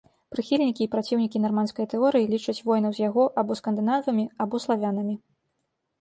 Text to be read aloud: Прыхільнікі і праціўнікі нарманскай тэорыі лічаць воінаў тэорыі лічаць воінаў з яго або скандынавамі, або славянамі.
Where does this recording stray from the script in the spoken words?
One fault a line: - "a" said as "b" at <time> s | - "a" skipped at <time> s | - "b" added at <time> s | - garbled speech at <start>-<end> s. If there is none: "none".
- "тэорыі лічаць воінаў" skipped at 2.9 s